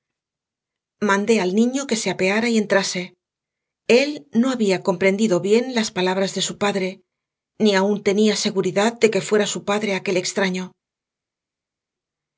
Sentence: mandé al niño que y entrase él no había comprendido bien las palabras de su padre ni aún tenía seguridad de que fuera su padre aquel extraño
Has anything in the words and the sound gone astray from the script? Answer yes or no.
yes